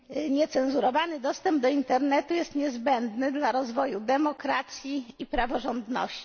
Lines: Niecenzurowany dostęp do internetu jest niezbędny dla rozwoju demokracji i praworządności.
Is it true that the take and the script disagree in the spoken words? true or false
false